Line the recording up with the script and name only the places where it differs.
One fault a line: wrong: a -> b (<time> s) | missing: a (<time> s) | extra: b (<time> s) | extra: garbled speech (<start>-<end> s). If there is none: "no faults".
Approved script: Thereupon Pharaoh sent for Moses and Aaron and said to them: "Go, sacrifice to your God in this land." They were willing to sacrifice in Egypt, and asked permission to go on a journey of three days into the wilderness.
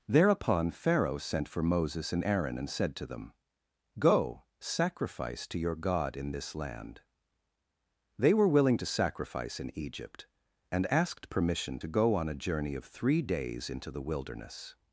no faults